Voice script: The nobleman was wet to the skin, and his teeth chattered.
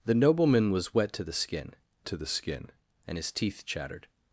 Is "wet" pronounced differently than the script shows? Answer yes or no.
no